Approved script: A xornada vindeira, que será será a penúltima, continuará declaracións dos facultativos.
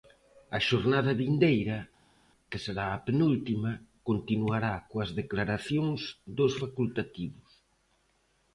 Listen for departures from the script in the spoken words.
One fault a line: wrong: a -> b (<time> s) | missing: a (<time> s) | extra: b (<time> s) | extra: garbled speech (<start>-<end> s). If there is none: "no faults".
missing: será (2.9 s)
extra: coas (4.9 s)